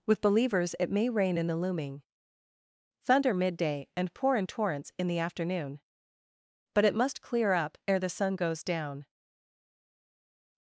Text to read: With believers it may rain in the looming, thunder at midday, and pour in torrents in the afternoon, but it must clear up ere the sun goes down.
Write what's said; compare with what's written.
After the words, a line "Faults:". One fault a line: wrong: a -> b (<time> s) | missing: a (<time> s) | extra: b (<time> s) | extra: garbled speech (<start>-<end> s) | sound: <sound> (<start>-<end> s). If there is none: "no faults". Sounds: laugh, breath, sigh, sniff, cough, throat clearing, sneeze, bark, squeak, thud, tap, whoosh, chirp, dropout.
With believers it may rain in the looming, thunder midday, and pour in torrents in the afternoon, but it must clear up ere the sun goes down.
Faults:
missing: at (3.3 s)